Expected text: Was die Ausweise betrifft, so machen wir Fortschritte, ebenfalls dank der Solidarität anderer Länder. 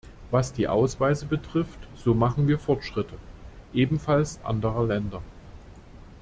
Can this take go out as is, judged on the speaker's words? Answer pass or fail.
fail